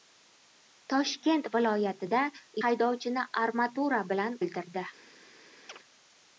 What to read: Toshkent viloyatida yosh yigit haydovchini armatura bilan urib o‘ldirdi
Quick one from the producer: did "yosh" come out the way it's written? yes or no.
no